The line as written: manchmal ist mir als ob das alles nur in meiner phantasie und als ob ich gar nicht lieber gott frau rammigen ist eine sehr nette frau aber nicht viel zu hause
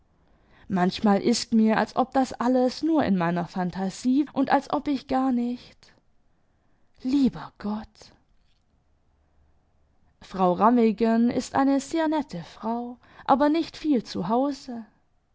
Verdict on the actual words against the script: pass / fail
pass